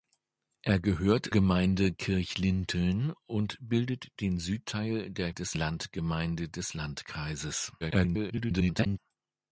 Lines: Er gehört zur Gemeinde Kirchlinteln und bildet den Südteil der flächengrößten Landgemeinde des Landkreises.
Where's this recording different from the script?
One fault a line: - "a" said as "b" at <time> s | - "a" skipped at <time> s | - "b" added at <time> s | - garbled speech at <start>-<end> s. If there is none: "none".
- "zur" skipped at 1.3 s
- "flächengrößten" said as "des" at 5.3 s
- garbled speech at 7.8-9.0 s